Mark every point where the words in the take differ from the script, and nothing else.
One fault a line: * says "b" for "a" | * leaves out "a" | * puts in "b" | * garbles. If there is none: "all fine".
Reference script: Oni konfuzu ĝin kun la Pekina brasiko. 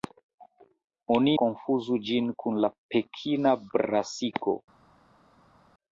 all fine